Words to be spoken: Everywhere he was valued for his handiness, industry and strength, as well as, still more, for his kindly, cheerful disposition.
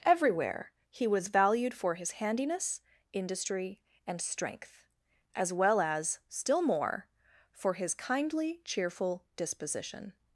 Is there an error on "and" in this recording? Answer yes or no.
no